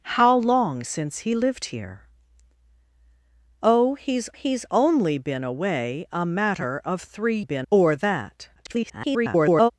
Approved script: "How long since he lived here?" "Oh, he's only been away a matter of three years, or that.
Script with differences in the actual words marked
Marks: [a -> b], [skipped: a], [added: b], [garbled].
"How long since he lived here?" "Oh, he's [added: he's] only been away a matter of three [years, -> been] or that. [garbled]